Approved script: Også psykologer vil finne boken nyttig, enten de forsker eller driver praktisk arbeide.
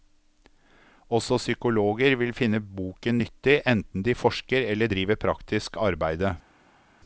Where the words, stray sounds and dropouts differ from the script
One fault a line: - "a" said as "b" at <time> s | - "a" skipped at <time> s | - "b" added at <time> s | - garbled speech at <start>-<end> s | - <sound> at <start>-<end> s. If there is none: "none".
none